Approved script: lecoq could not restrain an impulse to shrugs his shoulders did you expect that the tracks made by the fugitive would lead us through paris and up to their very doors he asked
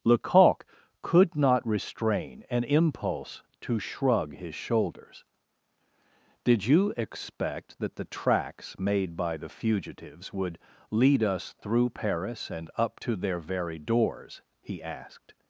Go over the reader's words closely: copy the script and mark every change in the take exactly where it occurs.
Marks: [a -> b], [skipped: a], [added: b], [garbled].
lecoq could not restrain an impulse to [shrugs -> shrug] his shoulders did you expect that the tracks made by the [fugitive -> fugitives] would lead us through paris and up to their very doors he asked